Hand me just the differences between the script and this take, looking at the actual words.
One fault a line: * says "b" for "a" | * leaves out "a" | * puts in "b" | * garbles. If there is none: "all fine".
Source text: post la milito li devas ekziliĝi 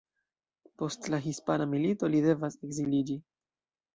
* puts in "hispana"